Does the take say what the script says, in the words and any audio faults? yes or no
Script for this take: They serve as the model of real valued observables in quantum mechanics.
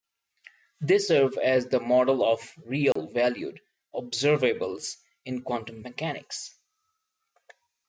no